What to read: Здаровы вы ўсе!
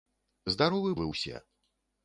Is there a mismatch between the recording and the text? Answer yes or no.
no